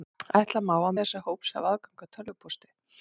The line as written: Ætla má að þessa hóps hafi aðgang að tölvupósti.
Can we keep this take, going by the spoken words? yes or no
yes